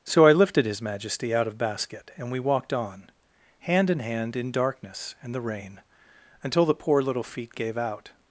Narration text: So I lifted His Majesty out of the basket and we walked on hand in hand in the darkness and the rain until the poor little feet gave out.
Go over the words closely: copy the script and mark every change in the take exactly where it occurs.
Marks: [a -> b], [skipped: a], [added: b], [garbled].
So I lifted His Majesty out of [skipped: the] basket and we walked on hand in hand in [skipped: the] darkness and the rain until the poor little feet gave out.